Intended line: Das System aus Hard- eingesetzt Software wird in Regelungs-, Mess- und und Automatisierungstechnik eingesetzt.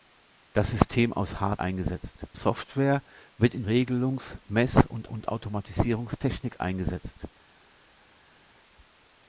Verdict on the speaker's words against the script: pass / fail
pass